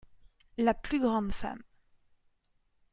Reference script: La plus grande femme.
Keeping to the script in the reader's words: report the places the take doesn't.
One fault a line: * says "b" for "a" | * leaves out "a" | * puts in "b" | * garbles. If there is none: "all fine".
all fine